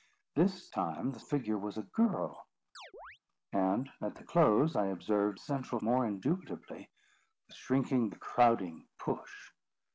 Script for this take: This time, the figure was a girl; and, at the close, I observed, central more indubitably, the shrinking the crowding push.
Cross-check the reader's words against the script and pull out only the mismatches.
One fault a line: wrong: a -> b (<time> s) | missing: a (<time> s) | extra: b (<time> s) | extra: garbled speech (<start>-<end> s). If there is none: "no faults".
no faults